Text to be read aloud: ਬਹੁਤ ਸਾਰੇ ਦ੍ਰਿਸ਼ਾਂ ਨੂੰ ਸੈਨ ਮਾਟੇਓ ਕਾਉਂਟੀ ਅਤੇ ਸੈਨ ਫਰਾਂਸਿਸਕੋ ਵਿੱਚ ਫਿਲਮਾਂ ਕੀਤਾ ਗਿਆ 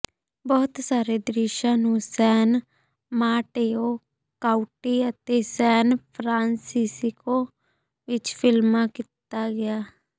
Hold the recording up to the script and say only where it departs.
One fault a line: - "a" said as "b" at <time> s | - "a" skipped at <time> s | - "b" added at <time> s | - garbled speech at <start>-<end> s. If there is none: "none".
none